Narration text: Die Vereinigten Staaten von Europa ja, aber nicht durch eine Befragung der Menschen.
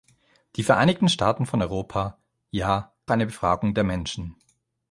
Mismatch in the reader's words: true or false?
true